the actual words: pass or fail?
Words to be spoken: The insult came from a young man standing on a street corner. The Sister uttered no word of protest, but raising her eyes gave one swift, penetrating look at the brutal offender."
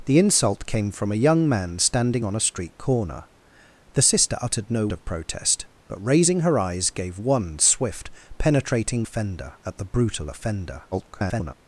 fail